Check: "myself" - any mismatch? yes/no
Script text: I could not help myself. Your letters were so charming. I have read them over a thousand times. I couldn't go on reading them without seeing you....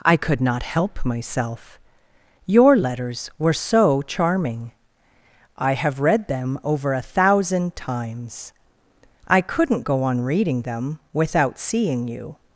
no